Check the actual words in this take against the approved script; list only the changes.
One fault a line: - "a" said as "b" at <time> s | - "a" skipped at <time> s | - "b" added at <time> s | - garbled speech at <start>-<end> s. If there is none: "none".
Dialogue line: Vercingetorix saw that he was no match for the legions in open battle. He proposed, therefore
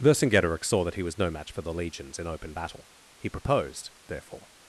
none